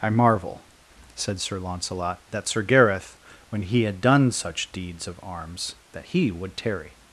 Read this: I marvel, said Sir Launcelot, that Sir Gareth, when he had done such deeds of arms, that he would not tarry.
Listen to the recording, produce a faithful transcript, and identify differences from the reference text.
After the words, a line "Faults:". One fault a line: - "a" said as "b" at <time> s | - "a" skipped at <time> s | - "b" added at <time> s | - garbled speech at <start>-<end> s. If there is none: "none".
I marvel, said Sir Launcelot, that Sir Gareth, when he had done such deeds of arms, that he would tarry.
Faults:
- "not" skipped at 6.6 s